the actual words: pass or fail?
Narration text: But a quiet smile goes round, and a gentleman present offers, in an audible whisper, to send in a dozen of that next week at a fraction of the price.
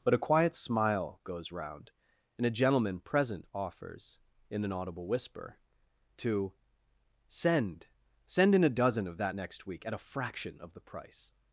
fail